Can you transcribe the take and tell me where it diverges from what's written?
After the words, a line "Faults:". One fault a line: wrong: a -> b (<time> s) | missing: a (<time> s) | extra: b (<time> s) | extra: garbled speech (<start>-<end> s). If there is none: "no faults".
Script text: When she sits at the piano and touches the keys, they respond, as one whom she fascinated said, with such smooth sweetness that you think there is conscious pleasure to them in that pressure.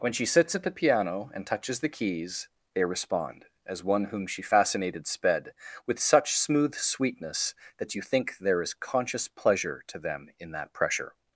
When she sits at the piano and touches the keys, they respond, as one whom she fascinated sped, with such smooth sweetness that you think there is conscious pleasure to them in that pressure.
Faults:
wrong: said -> sped (5.0 s)